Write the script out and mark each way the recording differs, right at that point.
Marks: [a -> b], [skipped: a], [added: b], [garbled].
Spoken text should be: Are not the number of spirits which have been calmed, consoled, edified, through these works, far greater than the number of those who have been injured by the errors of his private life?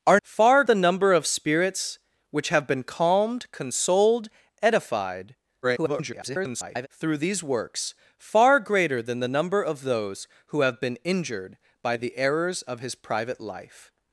Are [not -> far] the number of spirits which have been calmed, consoled, edified, [garbled] through these works, far greater than the number of those who have been injured by the errors of his private life?